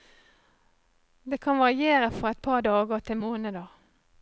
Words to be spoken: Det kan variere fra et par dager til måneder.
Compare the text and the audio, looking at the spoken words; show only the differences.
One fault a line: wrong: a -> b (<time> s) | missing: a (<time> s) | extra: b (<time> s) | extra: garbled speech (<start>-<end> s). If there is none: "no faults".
no faults